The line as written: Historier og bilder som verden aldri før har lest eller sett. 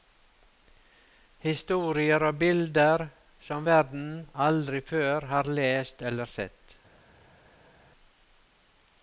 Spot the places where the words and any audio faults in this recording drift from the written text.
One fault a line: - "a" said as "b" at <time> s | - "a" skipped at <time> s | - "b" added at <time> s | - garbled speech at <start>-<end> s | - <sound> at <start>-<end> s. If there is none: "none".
none